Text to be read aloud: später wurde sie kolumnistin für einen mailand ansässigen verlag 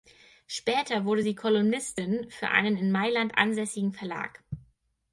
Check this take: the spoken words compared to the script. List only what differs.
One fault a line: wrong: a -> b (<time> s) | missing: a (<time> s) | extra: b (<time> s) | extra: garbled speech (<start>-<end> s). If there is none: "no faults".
extra: in (2.8 s)